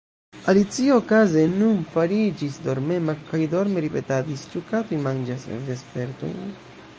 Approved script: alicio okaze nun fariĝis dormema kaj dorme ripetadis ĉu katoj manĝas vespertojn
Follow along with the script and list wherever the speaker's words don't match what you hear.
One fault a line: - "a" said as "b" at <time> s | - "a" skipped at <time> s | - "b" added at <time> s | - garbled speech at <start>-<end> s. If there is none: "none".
none